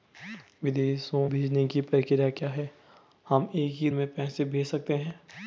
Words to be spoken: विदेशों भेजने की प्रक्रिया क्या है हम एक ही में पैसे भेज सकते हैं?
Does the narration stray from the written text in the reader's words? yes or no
no